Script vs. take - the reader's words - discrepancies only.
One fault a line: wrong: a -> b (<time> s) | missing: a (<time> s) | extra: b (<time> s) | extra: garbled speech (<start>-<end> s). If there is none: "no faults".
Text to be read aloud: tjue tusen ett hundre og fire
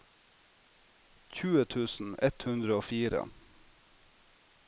no faults